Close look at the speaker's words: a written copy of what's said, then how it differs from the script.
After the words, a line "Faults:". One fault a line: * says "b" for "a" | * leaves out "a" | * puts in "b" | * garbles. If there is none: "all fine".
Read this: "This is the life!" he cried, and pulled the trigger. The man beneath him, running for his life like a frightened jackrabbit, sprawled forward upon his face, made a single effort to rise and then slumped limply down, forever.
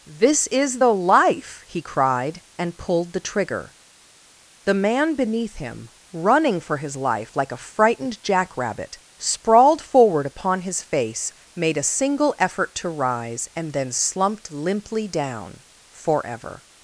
"This is the life!" he cried, and pulled the trigger. The man beneath him, running for his life like a frightened jackrabbit, sprawled forward upon his face, made a single effort to rise and then slumped limply down, forever.
Faults:
all fine